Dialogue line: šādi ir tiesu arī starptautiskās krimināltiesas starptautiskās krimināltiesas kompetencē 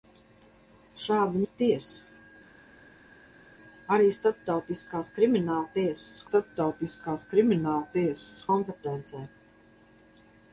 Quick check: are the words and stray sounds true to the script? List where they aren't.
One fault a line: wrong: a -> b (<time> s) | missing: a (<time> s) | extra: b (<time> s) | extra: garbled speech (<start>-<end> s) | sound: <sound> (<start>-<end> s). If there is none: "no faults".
no faults